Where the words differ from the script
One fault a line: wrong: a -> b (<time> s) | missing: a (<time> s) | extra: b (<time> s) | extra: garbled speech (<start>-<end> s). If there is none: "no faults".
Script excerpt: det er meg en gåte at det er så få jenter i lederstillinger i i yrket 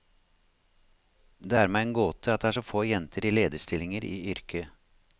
missing: i (4.1 s)